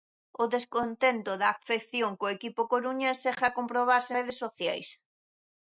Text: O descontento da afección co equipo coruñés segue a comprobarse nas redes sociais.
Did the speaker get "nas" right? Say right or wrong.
wrong